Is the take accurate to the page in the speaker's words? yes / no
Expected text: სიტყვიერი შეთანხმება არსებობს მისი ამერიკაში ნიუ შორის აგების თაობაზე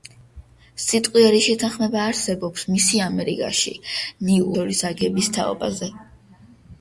yes